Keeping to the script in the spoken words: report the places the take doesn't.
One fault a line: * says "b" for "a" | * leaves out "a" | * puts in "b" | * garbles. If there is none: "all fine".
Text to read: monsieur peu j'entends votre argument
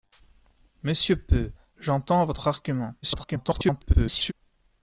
* garbles